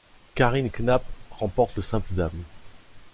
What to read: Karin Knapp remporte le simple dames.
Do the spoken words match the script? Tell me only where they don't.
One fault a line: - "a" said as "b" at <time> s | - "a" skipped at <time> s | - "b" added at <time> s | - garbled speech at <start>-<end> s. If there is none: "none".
none